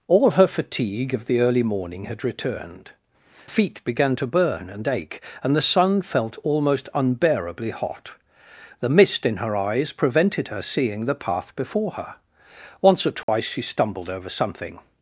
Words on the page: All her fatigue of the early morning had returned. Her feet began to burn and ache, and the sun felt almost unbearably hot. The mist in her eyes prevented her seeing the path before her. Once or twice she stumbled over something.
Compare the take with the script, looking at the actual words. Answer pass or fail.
fail